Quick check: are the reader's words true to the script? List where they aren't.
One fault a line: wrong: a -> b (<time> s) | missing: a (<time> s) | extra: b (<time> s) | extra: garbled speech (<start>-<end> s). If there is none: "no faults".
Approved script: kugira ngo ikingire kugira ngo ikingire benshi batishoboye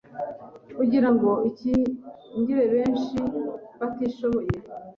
missing: kugira ngo ikingire (2.6 s)